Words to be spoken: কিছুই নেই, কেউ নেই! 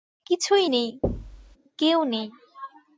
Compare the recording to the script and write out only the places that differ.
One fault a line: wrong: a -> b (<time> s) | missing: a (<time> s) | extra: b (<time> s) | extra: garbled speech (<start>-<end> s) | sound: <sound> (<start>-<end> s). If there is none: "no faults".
sound: thud (1.0-1.6 s)